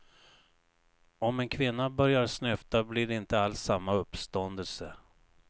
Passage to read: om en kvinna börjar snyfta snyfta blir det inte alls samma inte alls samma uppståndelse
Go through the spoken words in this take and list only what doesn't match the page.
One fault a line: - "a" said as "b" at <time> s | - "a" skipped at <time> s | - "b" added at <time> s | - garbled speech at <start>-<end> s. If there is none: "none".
- "snyfta" skipped at 2.8 s
- "inte alls samma" skipped at 3.9 s